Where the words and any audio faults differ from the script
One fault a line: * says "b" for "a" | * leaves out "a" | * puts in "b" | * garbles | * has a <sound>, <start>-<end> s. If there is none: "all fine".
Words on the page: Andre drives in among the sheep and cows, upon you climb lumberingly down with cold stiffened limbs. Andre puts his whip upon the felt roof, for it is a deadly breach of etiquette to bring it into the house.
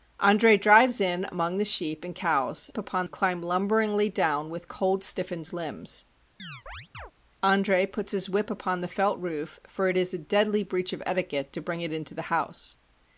* has a chirp, 6.4-7.1 s